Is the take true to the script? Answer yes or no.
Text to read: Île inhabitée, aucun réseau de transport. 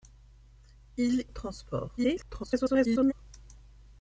no